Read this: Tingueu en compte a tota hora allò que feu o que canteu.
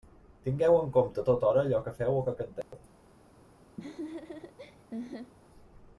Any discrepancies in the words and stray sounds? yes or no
yes